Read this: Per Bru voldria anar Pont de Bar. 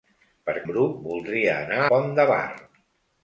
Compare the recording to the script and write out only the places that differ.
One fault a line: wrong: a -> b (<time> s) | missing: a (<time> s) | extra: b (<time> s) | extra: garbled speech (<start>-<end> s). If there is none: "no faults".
no faults